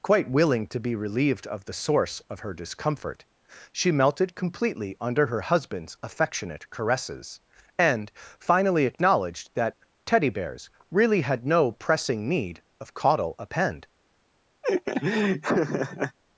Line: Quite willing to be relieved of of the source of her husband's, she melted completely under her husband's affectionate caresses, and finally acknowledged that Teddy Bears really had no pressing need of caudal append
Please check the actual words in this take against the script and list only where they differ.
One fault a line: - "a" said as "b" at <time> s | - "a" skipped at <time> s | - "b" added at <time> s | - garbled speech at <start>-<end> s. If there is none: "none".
- "of" skipped at 1.6 s
- "husband's" said as "discomfort" at 2.5 s